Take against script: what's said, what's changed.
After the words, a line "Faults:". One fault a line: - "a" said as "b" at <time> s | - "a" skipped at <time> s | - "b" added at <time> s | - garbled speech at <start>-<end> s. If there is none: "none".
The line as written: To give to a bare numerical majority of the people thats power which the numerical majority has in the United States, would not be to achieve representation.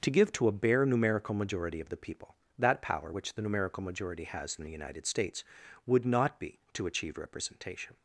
To give to a bare numerical majority of the people that power which the numerical majority has in the United States, would not be to achieve representation.
Faults:
- "thats" said as "that" at 2.6 s